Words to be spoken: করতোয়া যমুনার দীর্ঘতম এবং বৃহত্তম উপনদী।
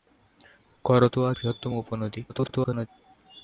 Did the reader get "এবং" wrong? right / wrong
wrong